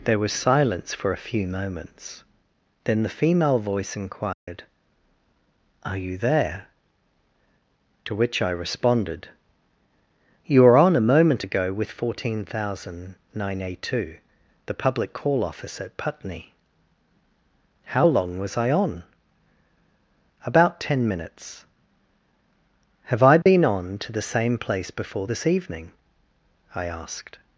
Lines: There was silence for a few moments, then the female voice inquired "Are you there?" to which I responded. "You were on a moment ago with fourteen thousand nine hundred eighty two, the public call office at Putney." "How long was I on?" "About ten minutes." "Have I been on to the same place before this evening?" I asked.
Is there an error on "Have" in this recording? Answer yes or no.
no